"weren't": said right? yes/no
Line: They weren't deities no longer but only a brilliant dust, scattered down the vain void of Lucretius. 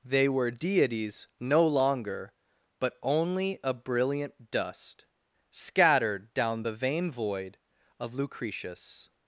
no